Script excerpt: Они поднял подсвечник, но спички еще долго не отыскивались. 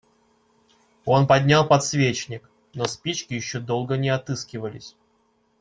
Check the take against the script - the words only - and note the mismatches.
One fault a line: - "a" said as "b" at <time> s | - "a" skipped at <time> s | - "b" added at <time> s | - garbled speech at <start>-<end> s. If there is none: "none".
- "Они" said as "Он" at 1.1 s